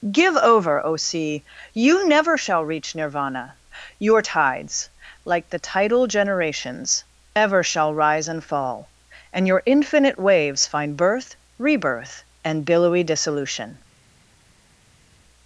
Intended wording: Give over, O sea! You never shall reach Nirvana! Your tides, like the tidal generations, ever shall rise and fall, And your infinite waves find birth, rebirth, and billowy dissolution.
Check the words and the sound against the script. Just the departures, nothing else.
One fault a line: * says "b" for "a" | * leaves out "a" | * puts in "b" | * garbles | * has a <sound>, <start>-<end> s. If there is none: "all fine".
all fine